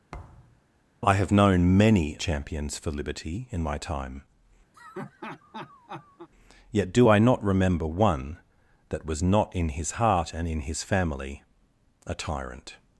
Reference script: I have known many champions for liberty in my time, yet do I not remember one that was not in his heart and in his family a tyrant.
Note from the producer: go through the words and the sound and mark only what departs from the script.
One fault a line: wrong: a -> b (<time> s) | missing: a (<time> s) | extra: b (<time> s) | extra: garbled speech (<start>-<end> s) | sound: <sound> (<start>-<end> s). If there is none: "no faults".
sound: thud (0.1-0.6 s)
sound: laugh (4.7-6.3 s)